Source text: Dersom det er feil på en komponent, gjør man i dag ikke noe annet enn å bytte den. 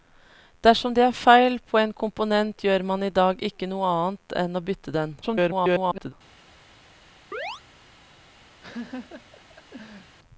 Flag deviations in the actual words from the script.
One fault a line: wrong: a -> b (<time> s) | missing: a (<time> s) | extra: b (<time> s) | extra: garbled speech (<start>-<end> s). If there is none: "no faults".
extra: garbled speech (5.2-6.1 s)